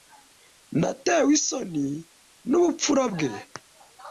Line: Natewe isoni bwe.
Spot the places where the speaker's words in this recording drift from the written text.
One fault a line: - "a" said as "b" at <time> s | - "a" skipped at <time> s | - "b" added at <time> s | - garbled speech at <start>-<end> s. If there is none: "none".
- "nubupfura" added at 2.5 s